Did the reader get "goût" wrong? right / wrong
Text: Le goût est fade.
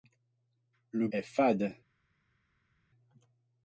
wrong